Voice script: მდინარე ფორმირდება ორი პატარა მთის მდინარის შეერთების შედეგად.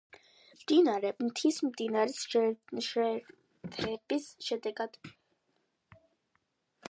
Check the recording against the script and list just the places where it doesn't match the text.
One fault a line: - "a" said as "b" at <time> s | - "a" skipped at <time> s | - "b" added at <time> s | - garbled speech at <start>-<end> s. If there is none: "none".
- "ფორმირდება ორი პატარა" skipped at 1.1 s